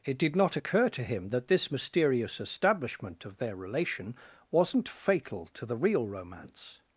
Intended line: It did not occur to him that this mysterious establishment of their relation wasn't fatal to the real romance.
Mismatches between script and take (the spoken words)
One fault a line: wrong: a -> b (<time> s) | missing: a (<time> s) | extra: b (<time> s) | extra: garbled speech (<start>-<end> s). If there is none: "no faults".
no faults